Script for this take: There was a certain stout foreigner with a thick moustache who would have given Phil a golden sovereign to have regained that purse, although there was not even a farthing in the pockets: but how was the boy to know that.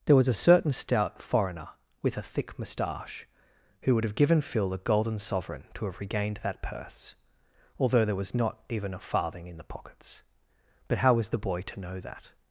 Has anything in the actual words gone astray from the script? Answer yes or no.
no